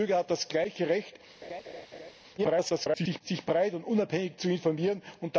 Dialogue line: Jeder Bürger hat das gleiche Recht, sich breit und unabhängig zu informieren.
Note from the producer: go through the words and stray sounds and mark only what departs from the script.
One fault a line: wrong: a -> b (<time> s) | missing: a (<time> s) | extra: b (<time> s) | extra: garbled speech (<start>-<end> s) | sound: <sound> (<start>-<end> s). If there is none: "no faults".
sound: laugh (1.4-2.1 s)
extra: garbled speech (2.4-3.2 s)